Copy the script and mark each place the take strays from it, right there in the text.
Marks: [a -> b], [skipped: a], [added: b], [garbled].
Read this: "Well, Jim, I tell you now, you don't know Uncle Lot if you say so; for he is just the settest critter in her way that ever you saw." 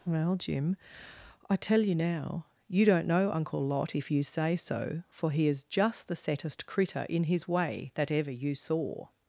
"Well, Jim, I tell you now, you don't know Uncle Lot if you say so; for he is just the settest critter in [her -> his] way that ever you saw."